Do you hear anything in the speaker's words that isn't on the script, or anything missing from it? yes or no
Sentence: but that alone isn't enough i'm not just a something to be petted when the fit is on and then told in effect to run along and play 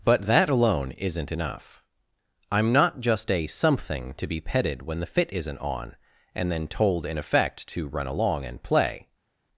yes